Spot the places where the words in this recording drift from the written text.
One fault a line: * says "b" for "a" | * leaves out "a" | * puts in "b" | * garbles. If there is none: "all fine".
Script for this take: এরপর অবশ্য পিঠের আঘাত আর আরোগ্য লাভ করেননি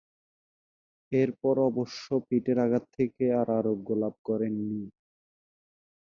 * puts in "থেকে"